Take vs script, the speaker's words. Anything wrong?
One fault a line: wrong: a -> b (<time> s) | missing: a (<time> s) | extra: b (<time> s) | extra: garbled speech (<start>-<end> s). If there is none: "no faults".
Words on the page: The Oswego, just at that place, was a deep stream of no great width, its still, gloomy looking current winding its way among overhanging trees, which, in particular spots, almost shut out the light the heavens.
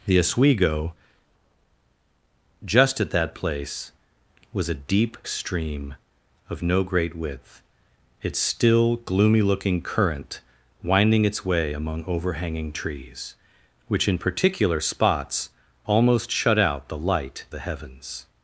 no faults